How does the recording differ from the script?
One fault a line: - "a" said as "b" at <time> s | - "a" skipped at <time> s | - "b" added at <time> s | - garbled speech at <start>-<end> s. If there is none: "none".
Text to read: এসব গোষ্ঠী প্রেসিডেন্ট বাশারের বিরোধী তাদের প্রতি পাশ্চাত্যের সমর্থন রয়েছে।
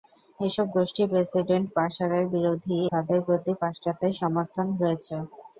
none